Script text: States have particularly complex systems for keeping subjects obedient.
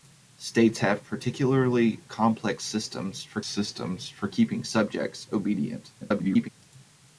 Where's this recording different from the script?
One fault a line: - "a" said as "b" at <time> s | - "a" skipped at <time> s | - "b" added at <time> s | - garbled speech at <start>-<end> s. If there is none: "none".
- "systems for" added at 3.5 s
- garbled speech at 6.0-6.5 s